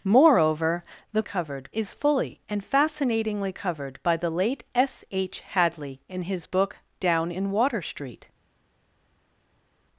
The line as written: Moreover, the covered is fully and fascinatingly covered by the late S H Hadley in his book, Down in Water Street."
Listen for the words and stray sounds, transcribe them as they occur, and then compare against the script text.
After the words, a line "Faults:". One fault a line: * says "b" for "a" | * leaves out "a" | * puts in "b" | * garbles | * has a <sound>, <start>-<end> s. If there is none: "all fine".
Moreover, the covered is fully and fascinatingly covered by the late S H Hadley in his book, Down in Water Street."
Faults:
all fine